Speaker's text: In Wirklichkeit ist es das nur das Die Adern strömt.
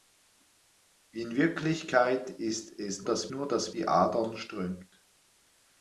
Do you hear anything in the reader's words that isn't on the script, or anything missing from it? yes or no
no